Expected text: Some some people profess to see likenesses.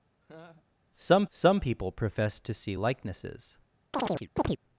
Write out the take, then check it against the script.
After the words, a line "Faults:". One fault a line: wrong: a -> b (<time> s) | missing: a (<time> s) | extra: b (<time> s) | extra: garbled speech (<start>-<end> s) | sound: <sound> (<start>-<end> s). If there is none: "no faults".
Some some people profess to see likenesses.
Faults:
sound: laugh (0.2-0.7 s)
sound: chirp (3.9-4.6 s)